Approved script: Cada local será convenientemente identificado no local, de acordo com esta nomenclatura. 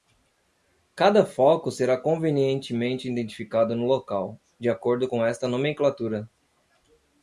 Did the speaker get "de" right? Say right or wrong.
right